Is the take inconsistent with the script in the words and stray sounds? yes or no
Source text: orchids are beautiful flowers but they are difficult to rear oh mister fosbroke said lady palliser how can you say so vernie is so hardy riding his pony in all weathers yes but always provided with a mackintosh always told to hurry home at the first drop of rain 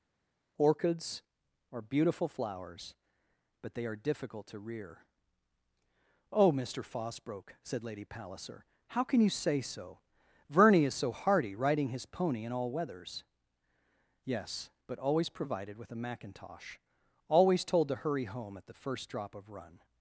yes